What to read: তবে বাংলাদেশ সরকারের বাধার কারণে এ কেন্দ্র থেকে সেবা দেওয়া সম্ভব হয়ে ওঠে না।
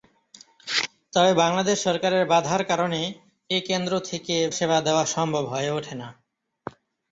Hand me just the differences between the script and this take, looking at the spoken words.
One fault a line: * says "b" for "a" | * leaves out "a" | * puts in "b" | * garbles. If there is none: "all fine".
all fine